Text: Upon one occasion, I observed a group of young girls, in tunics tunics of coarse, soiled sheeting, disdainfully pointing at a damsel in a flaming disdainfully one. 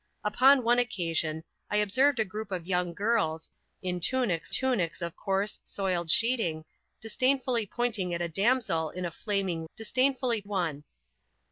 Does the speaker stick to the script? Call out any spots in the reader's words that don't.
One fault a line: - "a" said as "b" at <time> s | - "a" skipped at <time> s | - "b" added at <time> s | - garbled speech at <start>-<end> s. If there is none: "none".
none